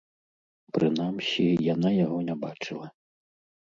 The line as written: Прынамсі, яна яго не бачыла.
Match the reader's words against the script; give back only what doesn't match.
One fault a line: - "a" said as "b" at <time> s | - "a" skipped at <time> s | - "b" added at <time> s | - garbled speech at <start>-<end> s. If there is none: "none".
none